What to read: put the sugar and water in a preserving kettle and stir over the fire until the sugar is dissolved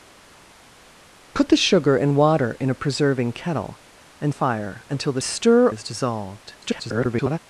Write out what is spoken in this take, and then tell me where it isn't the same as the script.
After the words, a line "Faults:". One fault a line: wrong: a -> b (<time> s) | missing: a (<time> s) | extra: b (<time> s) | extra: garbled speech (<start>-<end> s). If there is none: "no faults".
put the sugar and water in a preserving kettle and fire until the stir is dissolved [garbled]
Faults:
missing: stir over the (4.4 s)
wrong: sugar -> stir (5.2 s)
extra: garbled speech (6.6-7.4 s)